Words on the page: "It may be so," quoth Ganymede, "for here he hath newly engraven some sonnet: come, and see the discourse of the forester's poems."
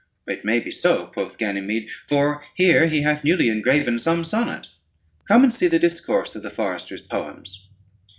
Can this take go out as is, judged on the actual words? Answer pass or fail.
pass